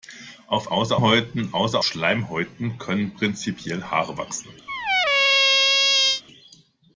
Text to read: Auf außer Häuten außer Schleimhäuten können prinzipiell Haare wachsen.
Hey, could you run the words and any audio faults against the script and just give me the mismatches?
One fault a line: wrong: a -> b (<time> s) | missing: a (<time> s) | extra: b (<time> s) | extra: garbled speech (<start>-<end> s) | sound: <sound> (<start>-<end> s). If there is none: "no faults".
sound: squeak (4.7-6.2 s)